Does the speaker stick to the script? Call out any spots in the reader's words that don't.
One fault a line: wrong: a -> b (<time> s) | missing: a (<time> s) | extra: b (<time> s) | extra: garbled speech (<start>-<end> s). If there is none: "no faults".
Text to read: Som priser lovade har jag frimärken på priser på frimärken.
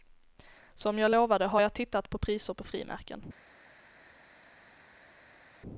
wrong: priser -> jag (1.0 s)
wrong: frimärken -> tittat (1.7 s)